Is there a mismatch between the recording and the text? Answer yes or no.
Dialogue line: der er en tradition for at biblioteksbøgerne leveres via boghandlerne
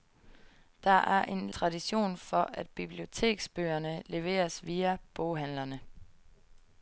no